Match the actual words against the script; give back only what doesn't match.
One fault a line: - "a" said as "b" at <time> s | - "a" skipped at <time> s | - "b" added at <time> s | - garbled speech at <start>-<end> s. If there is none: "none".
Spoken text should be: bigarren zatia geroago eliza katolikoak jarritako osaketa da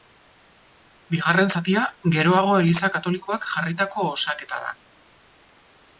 none